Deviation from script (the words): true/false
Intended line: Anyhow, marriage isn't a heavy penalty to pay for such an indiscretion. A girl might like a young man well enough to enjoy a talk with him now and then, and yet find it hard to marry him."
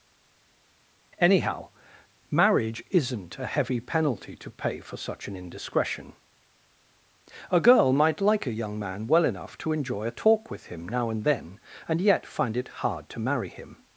false